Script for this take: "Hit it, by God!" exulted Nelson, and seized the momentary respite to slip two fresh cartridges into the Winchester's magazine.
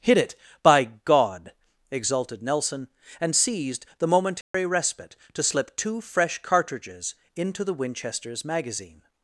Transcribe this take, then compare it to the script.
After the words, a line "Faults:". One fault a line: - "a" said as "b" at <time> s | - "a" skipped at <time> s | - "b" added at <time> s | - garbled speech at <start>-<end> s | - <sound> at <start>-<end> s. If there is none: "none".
"Hit it, by God!" exulted Nelson, and seized the momentary respite to slip two fresh cartridges into the Winchester's magazine.
Faults:
- dropout at 4.4-4.5 s